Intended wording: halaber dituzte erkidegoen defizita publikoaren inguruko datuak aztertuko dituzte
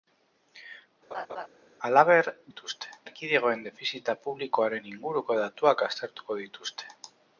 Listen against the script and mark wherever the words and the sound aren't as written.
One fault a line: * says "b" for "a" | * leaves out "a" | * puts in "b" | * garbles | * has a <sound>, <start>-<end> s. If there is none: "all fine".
* has a laugh, 1.1-1.5 s